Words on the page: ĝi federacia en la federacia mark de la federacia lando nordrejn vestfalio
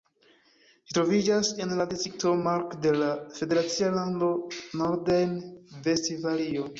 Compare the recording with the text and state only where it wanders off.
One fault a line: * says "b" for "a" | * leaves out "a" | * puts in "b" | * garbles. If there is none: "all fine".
* says "troviĝas" for "federacia"
* says "distrikto" for "federacia"